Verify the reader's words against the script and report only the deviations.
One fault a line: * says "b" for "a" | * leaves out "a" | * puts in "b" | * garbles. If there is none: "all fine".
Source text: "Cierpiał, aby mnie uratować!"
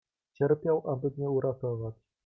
all fine